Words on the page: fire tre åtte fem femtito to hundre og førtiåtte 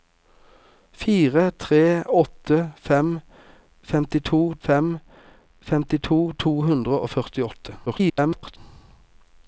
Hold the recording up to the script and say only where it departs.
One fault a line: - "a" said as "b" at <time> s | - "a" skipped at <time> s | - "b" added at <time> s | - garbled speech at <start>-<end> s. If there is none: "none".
- "fem femtito" added at 4.7 s
- garbled speech at 7.9-8.6 s